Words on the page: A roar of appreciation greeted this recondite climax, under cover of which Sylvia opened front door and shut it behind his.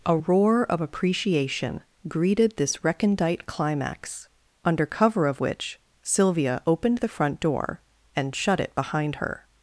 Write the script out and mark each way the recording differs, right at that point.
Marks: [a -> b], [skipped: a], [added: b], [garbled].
A roar of appreciation greeted this recondite climax, under cover of which Sylvia opened [added: the] front door and shut it behind [his. -> her]